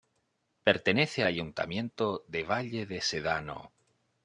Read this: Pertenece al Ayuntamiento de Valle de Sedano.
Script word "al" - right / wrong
wrong